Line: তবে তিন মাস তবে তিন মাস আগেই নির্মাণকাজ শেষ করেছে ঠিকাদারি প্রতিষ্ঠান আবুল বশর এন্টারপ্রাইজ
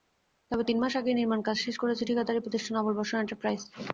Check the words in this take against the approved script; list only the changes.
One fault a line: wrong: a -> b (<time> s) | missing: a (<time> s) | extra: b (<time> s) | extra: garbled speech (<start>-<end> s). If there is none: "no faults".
missing: তবে তিন মাস (0.9 s)